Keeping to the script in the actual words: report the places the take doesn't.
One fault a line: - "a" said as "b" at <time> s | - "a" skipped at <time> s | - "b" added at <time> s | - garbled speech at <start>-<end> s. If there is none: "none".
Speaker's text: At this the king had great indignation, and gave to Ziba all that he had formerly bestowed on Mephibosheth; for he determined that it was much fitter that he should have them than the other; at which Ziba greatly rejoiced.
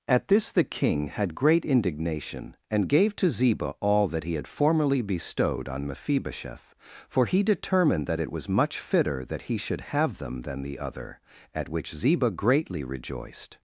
none